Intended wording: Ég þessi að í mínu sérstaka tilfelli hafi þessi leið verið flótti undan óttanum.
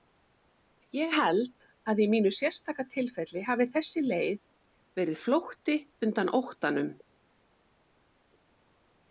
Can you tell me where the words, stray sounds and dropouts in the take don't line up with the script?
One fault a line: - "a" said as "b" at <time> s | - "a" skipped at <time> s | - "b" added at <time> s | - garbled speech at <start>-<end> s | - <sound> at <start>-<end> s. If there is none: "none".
- "þessi" said as "held" at 1.2 s